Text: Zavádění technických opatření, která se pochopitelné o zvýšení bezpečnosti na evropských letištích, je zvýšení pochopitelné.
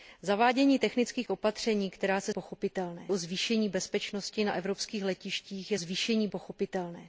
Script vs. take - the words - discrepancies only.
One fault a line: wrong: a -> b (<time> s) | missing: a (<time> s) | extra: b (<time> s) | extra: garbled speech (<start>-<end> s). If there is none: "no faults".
no faults